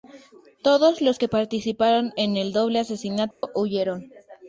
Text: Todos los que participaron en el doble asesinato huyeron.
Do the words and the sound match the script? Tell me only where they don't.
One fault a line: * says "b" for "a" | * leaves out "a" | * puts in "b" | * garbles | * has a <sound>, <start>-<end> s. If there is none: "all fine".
* has a dropout, 3.3-3.4 s